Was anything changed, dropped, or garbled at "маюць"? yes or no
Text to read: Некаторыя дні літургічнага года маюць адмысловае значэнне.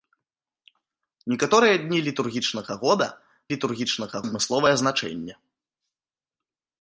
yes